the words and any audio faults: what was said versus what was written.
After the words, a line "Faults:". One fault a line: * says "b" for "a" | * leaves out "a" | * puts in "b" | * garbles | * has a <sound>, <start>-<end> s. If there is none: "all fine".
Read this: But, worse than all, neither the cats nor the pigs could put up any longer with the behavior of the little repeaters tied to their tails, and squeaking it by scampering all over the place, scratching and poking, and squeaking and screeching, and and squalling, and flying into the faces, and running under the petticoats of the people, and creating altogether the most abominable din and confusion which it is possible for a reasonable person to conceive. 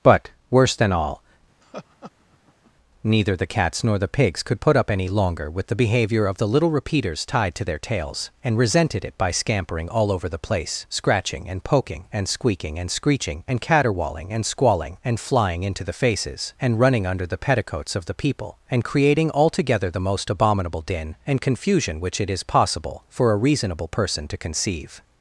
But, worse than all, neither the cats nor the pigs could put up any longer with the behavior of the little repeaters tied to their tails, and resented it by scampering all over the place, scratching and poking, and squeaking and screeching, and caterwauling and squalling, and flying into the faces, and running under the petticoats of the people, and creating altogether the most abominable din and confusion which it is possible for a reasonable person to conceive.
Faults:
* has a laugh, 1.6-2.7 s
* says "resented" for "squeaking"
* puts in "caterwauling"